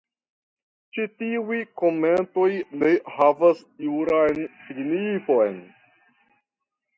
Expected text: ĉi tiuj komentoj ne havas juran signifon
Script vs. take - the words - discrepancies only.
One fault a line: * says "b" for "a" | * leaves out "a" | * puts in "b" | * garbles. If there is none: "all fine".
all fine